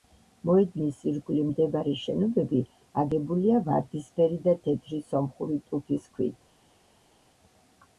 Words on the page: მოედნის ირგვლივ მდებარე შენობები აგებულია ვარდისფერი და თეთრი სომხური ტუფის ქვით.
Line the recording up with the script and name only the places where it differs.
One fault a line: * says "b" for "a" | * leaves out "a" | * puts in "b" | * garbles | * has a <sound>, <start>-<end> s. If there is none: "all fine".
all fine